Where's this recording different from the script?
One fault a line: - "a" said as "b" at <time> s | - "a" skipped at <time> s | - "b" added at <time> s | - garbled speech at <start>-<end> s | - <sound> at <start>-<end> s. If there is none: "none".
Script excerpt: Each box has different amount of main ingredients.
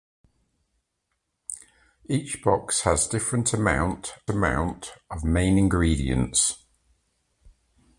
- "amount" added at 4.3 s